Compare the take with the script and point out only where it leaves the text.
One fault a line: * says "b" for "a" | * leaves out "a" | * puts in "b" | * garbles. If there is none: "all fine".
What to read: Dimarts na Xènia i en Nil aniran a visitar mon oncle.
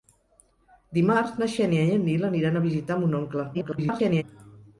* garbles